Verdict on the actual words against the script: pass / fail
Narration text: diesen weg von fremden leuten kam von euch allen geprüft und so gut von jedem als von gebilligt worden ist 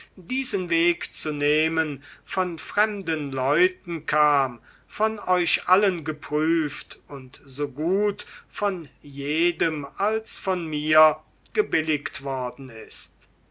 fail